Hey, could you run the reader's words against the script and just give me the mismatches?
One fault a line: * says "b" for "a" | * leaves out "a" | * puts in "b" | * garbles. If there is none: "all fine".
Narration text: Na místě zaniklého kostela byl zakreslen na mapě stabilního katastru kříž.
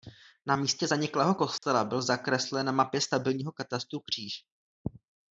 all fine